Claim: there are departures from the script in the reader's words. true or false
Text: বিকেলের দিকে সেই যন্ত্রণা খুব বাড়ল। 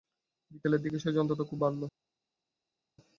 false